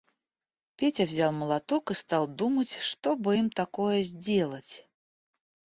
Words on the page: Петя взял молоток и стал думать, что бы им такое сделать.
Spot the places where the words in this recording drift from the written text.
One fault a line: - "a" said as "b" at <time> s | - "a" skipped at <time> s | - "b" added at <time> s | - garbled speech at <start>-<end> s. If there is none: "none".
none